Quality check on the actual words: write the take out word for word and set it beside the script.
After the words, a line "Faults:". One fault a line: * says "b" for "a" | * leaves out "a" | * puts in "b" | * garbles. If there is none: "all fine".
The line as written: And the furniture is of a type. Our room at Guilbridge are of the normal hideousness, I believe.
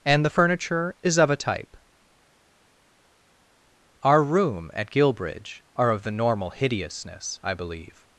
And the furniture is of a type. Our room at Guilbridge are of the normal hideousness, I believe.
Faults:
all fine